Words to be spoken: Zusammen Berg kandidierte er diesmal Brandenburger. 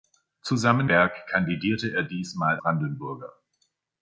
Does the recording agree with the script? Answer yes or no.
yes